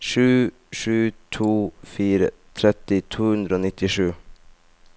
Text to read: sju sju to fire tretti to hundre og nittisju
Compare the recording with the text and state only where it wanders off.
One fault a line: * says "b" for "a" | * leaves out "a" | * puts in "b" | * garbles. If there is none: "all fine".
all fine